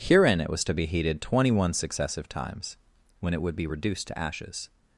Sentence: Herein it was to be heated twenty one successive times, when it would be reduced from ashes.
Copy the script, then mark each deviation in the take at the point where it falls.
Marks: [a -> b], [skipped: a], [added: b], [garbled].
Herein it was to be heated twenty one successive times, when it would be reduced [from -> to] ashes.